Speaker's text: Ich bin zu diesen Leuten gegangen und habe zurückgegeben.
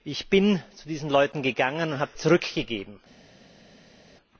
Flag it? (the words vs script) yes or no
no